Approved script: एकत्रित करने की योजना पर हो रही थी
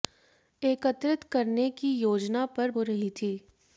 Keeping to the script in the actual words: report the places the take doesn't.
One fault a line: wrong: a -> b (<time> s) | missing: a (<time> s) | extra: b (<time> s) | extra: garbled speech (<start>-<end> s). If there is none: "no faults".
no faults